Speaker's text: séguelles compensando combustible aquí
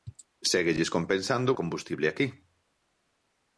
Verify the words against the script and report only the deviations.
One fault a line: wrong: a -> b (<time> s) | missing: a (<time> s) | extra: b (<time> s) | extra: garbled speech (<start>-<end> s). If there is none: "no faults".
no faults